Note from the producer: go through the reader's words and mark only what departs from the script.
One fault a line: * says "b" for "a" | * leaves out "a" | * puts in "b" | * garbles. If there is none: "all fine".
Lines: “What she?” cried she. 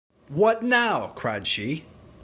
* says "now" for "she"